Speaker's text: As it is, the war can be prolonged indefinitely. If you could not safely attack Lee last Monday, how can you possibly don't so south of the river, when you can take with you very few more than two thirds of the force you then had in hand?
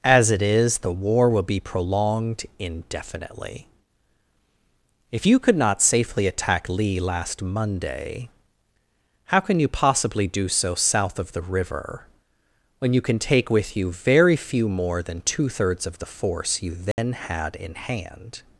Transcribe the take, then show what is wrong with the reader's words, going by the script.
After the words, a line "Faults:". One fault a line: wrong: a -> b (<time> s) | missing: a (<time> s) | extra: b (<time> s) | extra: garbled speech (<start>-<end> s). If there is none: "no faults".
As it is, the war will be prolonged indefinitely. If you could not safely attack Lee last Monday, how can you possibly do so south of the river, when you can take with you very few more than two thirds of the force you then had in hand?
Faults:
wrong: can -> will (1.3 s)
wrong: don't -> do (10.3 s)